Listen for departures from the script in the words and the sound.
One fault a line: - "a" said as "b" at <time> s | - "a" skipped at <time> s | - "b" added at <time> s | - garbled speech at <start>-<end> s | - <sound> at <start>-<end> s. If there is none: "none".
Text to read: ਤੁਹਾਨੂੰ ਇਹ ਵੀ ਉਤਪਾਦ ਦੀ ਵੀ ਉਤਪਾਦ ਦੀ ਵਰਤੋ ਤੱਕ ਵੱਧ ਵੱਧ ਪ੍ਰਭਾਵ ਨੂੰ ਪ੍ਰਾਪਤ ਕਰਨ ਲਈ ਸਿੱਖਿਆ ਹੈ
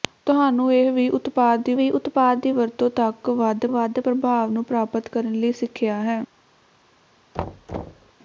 - thud at 7.3-8.1 s